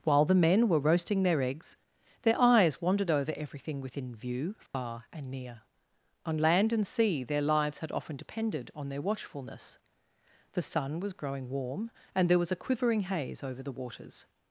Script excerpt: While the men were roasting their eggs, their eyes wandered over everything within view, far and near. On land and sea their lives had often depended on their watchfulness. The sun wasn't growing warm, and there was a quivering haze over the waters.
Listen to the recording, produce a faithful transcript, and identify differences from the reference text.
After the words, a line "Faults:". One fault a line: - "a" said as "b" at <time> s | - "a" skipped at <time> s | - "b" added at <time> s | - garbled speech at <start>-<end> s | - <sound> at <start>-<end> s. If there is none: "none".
While the men were roasting their eggs, their eyes wandered over everything within view, far and near. On land and sea their lives had often depended on their watchfulness. The sun was growing warm, and there was a quivering haze over the waters.
Faults:
- dropout at 4.7-4.7 s
- "wasn't" said as "was" at 11.0 s